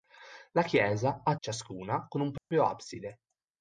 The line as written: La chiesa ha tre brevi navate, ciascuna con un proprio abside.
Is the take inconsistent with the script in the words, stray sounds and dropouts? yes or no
yes